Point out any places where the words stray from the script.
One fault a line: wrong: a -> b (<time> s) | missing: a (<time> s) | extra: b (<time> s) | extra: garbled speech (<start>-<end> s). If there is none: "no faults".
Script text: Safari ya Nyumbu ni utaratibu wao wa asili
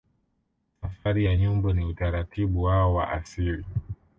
no faults